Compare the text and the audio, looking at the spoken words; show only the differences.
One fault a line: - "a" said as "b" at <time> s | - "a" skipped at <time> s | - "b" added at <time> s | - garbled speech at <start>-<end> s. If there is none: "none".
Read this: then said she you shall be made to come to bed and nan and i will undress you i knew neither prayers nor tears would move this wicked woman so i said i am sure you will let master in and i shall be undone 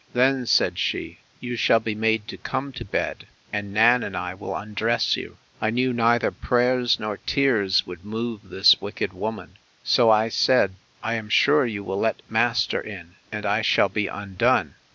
none